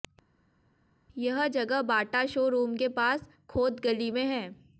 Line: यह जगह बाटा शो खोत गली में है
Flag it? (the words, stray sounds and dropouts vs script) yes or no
yes